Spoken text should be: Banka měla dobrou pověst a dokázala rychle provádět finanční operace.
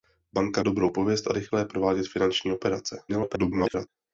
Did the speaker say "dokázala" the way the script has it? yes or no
no